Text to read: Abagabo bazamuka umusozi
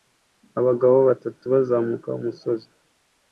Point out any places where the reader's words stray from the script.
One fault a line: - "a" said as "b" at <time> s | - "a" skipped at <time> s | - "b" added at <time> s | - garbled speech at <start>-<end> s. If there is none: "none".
- "batatu" added at 1.1 s